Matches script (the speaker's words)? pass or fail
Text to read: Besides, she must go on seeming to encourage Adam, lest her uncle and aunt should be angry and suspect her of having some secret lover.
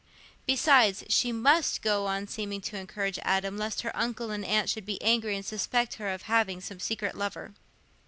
pass